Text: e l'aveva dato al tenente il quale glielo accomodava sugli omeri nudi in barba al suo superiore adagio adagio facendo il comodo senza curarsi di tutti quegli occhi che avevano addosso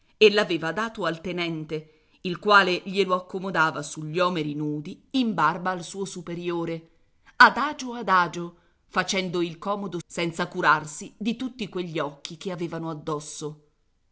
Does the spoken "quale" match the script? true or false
true